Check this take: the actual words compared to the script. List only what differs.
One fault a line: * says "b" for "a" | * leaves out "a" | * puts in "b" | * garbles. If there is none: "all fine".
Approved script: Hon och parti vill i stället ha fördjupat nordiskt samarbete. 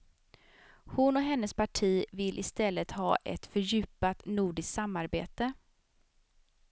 * puts in "hennes"
* puts in "ett"